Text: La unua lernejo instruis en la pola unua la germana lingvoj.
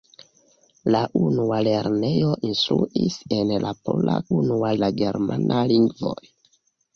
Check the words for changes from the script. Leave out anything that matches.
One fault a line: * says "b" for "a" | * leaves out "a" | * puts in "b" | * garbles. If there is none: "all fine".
all fine